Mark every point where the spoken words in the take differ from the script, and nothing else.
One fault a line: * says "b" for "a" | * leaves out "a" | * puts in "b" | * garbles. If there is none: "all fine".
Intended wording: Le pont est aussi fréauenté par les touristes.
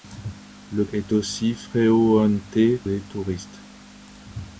* leaves out "pont"
* leaves out "par"